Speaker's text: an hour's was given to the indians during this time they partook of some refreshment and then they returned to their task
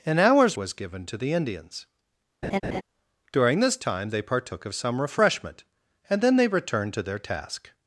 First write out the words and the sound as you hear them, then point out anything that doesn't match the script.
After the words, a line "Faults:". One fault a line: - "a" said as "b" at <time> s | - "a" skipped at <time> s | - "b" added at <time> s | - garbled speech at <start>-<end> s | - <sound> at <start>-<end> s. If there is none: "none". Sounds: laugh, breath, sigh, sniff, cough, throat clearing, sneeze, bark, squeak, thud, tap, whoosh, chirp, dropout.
an hour's was given to the indians during this time they partook of some refreshment and then they returned to their task
Faults:
- laugh at 2.4-2.8 s